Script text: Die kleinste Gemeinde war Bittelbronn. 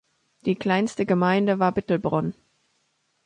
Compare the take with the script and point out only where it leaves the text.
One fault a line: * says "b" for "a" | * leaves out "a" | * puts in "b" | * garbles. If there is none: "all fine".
all fine